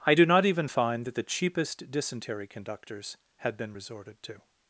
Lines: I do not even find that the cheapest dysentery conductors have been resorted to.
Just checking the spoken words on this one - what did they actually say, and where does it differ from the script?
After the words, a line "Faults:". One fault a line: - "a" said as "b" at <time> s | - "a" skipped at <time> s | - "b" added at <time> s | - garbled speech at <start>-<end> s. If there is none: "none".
I do not even find that the cheapest dysentery conductors had been resorted to.
Faults:
- "have" said as "had" at 3.4 s